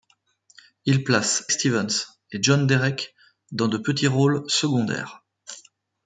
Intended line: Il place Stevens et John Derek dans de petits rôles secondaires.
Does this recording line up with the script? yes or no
yes